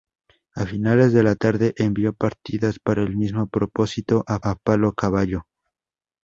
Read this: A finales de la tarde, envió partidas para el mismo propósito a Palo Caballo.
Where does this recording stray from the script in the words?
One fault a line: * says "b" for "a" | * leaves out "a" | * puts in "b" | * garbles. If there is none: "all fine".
* puts in "a"